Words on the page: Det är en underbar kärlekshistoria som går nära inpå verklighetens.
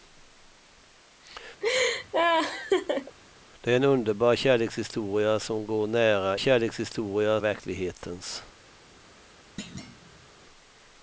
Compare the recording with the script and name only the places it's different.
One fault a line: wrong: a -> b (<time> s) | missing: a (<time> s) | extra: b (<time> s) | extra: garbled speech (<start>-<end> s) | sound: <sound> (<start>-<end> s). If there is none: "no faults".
sound: laugh (1.6-3.2 s)
wrong: inpå -> kärlekshistoria (6.4 s)
sound: thud (9.6-10.3 s)